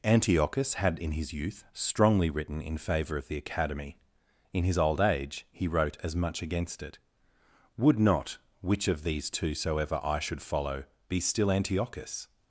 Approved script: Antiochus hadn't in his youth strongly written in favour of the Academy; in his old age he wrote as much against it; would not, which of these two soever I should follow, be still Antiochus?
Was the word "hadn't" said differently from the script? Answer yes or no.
yes